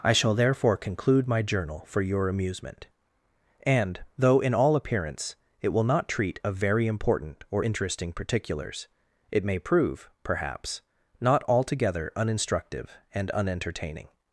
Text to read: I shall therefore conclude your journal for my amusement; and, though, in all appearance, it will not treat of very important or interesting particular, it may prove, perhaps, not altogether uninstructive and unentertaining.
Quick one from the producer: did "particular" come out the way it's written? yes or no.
no